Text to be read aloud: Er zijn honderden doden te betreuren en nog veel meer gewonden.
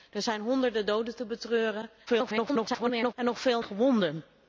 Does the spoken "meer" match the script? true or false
false